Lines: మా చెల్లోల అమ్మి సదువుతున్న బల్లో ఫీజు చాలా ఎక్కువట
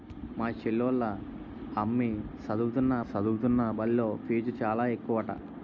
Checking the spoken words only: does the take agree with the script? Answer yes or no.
no